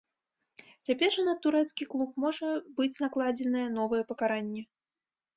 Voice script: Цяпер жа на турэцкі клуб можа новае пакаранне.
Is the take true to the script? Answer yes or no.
no